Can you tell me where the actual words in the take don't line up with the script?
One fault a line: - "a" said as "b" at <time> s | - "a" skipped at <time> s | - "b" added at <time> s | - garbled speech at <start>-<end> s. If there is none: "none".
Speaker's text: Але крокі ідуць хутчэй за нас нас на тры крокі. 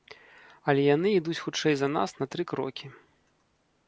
- "крокі" said as "яны" at 0.9 s
- "нас" skipped at 2.1 s